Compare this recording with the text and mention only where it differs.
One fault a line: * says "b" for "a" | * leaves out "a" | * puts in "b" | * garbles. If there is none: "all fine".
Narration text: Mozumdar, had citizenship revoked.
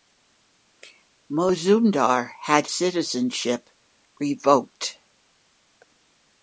all fine